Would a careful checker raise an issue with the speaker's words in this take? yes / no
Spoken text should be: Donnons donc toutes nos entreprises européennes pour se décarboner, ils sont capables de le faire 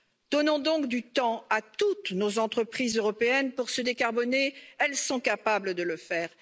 yes